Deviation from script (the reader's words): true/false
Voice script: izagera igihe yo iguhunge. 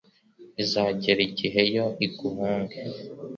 false